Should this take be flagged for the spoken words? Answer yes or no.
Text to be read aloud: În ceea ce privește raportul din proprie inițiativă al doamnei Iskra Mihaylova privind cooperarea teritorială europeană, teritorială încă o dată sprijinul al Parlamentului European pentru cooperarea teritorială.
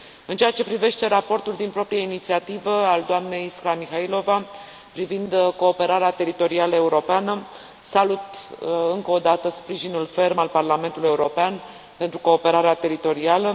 yes